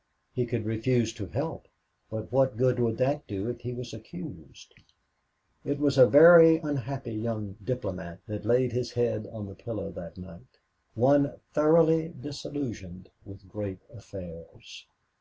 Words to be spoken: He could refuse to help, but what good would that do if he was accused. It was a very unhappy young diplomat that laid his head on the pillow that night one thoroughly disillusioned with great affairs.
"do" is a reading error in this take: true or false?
false